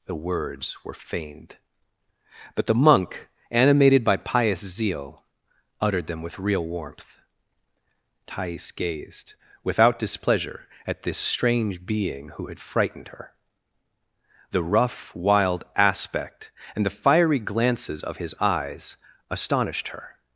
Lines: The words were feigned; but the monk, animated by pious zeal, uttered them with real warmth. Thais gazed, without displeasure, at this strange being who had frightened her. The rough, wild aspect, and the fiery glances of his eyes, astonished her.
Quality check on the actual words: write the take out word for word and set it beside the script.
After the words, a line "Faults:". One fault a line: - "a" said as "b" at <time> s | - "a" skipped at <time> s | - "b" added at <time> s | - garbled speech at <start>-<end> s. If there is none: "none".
The words were feigned; but the monk, animated by pious zeal, uttered them with real warmth. Thais gazed, without displeasure, at this strange being who had frightened her. The rough, wild aspect, and the fiery glances of his eyes, astonished her.
Faults:
none